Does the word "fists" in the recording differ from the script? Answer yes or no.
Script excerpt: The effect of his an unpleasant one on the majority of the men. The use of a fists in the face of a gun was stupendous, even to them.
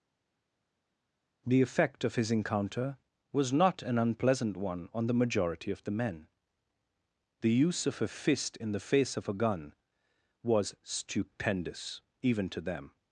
yes